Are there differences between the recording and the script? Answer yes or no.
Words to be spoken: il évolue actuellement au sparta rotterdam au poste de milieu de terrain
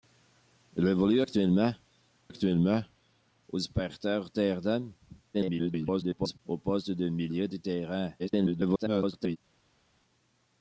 yes